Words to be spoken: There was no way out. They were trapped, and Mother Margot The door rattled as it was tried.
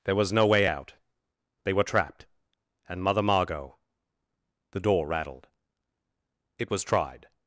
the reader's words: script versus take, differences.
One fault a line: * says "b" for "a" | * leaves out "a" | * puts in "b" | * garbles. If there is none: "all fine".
* leaves out "as"